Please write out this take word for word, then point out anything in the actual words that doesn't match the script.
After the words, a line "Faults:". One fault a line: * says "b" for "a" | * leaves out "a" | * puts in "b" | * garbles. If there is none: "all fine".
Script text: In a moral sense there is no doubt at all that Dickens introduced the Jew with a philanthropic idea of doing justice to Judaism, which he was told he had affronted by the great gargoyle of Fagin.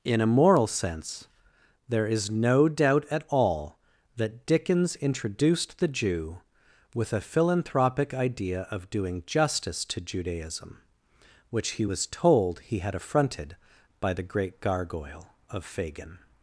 In a moral sense there is no doubt at all that Dickens introduced the Jew with a philanthropic idea of doing justice to Judaism, which he was told he had affronted by the great gargoyle of Fagin.
Faults:
all fine